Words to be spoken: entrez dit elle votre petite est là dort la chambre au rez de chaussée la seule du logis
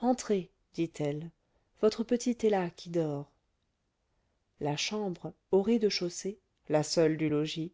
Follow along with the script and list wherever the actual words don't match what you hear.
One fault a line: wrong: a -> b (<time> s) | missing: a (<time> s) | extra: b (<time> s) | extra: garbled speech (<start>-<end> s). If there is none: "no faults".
extra: qui (2.7 s)